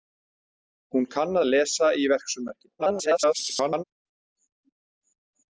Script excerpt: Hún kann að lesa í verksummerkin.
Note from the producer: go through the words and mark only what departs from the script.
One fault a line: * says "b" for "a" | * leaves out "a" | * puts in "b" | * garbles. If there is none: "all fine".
* garbles